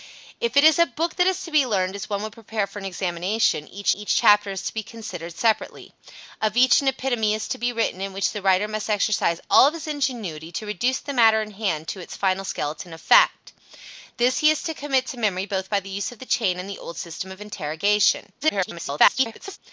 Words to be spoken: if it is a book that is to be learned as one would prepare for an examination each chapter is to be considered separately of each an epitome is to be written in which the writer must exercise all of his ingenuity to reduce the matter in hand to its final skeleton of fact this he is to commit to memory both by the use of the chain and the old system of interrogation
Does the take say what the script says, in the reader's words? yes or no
no